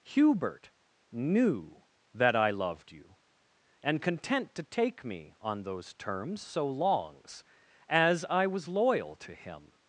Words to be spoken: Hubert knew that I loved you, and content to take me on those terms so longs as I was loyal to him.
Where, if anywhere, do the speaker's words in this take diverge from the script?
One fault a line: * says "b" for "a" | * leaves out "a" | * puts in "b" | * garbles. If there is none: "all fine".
all fine